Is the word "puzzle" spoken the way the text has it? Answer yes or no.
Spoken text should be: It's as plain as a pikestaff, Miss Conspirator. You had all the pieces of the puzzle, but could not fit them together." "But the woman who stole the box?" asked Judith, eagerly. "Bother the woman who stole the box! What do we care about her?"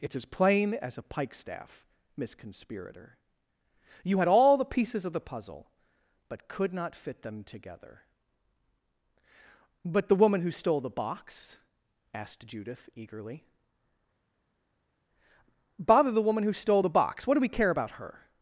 yes